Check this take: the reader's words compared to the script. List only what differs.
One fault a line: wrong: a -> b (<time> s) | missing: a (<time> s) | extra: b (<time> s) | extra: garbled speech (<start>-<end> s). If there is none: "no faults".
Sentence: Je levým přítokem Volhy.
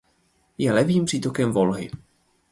no faults